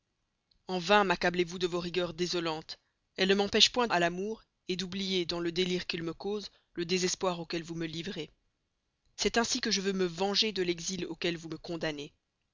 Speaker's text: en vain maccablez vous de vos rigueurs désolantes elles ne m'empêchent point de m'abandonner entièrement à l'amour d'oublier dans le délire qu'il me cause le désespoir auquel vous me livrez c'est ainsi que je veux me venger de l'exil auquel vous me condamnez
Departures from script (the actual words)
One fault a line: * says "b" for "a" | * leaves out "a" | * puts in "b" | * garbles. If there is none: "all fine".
* leaves out "de m'abandonner entièrement"